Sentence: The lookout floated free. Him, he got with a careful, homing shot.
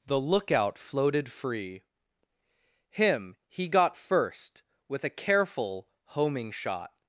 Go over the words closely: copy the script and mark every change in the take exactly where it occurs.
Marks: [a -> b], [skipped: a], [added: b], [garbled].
The lookout floated free. Him, he got [added: first] with a careful, homing shot.